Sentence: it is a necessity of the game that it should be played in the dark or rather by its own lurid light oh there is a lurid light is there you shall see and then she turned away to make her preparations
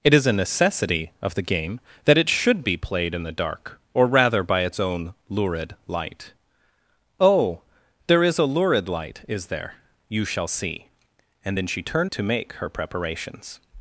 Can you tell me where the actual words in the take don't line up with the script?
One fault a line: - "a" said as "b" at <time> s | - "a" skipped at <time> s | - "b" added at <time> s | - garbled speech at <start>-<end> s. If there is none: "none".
- "away" skipped at 12.1 s